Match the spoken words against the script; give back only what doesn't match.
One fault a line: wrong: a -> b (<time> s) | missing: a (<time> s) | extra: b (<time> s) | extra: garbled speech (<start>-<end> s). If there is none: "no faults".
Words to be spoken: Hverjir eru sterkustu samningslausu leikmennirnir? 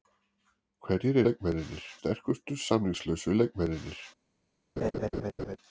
wrong: eru -> leikmennirnir (1.3 s)